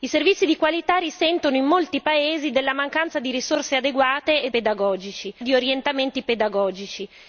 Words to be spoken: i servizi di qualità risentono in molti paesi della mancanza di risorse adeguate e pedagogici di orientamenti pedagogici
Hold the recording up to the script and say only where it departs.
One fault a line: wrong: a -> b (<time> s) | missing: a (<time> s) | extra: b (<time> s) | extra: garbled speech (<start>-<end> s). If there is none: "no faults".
no faults